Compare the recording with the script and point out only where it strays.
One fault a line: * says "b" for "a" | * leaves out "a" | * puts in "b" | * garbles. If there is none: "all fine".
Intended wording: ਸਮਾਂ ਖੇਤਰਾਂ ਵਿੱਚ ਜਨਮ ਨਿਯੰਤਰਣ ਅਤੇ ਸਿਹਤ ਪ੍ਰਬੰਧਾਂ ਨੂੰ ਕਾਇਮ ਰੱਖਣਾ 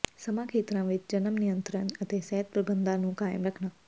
all fine